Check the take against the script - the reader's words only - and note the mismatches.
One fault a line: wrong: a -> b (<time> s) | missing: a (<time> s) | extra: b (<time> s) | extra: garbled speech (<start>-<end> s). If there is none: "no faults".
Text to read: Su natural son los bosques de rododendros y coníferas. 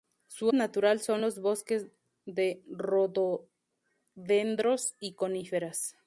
no faults